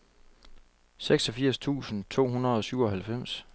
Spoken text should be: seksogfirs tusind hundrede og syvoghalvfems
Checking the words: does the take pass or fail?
fail